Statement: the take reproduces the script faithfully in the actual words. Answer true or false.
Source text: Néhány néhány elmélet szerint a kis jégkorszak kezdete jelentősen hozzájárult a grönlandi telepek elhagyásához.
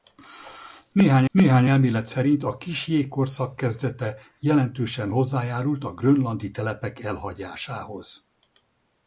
true